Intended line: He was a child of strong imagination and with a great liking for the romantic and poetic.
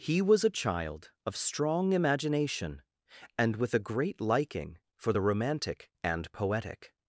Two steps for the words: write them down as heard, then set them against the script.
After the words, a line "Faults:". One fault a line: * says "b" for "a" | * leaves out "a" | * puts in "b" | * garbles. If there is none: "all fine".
He was a child of strong imagination and with a great liking for the romantic and poetic.
Faults:
all fine